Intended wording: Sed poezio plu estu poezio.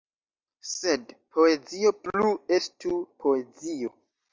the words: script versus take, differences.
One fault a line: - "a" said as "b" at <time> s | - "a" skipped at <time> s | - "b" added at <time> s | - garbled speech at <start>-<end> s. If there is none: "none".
none